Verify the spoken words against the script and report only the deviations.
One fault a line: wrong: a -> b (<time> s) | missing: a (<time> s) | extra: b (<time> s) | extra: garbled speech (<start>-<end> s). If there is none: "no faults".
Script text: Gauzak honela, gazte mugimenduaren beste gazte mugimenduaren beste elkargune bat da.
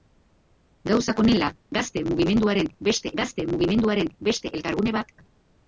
no faults